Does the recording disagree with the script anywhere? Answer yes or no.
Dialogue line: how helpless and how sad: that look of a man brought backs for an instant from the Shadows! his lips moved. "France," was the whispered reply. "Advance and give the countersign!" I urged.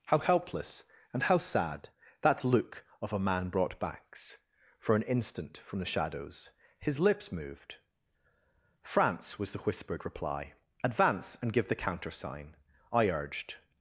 no